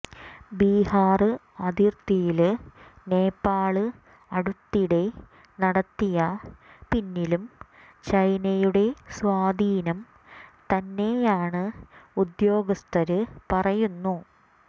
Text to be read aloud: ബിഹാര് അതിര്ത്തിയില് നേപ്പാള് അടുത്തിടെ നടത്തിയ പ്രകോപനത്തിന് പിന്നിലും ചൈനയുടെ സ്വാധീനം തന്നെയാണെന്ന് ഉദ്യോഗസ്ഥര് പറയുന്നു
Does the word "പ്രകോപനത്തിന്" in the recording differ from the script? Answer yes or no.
yes